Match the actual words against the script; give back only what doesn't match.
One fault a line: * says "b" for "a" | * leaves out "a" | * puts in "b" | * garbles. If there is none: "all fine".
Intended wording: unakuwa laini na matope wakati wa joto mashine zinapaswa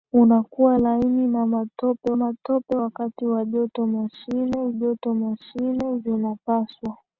* puts in "matope"
* puts in "joto mashine"